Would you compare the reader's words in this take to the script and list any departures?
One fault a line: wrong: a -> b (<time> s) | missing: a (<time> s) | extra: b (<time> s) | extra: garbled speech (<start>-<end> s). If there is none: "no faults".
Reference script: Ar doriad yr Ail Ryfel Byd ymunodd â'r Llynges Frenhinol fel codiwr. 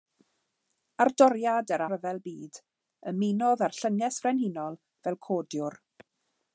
missing: Ail (1.8 s)